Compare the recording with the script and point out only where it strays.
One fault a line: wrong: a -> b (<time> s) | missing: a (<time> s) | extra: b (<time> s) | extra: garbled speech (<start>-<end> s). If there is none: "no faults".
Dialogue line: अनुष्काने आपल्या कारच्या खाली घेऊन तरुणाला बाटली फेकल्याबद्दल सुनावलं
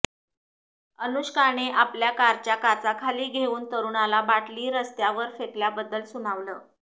extra: काचा (2.5 s)
extra: रस्त्यावर (4.7 s)